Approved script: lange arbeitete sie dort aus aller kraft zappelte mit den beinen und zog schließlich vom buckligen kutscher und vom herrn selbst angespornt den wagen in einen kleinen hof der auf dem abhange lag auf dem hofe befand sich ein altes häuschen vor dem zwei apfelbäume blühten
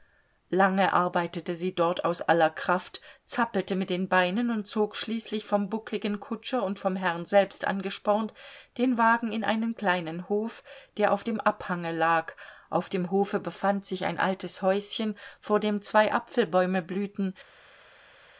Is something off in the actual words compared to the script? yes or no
no